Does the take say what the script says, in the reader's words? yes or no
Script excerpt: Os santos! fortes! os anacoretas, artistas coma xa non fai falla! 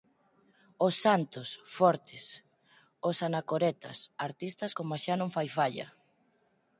yes